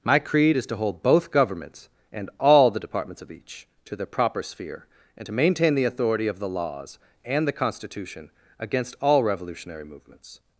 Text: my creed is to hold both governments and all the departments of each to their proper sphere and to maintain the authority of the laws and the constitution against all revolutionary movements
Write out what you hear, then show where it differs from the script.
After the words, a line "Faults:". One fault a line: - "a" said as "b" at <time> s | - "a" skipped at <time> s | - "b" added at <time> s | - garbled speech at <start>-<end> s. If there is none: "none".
my creed is to hold both governments and all the departments of each to their proper sphere and to maintain the authority of the laws and the constitution against all revolutionary movements
Faults:
none